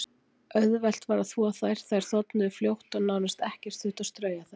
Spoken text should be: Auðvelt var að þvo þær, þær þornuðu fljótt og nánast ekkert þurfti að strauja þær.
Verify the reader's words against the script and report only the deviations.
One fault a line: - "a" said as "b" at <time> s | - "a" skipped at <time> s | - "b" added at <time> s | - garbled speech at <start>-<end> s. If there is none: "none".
none